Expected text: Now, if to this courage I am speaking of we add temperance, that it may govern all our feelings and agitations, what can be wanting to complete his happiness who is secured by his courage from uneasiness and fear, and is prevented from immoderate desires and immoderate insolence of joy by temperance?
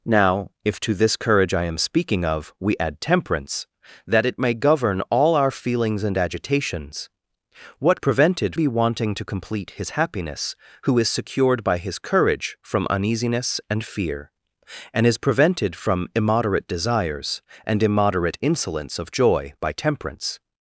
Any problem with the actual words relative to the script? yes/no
yes